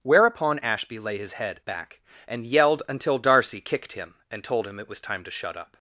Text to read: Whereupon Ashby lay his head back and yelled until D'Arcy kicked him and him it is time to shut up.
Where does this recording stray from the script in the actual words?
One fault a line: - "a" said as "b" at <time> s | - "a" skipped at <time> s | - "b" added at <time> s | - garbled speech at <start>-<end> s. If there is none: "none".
- "told" added at 4.4 s
- "is" said as "was" at 4.9 s